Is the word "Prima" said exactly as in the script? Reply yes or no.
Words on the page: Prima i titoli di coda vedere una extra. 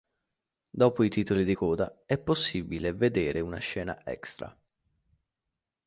no